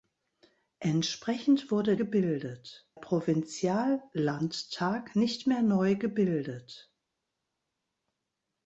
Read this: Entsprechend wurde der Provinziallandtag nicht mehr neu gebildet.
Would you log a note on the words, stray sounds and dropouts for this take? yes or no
yes